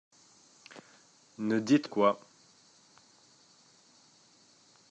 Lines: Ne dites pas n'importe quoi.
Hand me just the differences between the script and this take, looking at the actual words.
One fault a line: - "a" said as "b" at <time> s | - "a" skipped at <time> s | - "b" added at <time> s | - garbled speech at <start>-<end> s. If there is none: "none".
- "pas n'importe" skipped at 1.9 s